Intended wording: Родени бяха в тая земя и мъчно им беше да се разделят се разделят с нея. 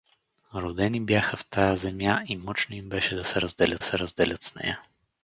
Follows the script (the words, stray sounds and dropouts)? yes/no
yes